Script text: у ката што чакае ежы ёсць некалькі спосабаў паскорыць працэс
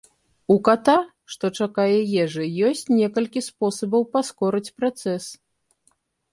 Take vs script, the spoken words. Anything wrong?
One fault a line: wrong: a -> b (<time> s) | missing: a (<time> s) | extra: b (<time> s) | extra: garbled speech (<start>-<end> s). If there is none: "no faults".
no faults